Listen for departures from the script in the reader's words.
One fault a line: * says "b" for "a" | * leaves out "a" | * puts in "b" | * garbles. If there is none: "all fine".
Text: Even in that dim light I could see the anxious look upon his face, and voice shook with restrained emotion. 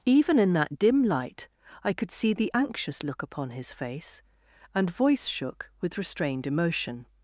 all fine